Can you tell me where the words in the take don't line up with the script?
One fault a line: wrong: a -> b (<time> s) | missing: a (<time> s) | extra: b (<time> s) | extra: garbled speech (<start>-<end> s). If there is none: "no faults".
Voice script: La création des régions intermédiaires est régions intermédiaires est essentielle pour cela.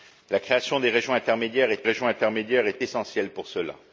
no faults